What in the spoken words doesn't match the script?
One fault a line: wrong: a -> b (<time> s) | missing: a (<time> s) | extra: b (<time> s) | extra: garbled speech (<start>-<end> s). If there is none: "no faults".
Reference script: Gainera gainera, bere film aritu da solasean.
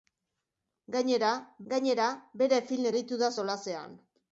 no faults